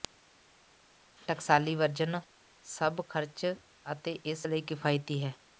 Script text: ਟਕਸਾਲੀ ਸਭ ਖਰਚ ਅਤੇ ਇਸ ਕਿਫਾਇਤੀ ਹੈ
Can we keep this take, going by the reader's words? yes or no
no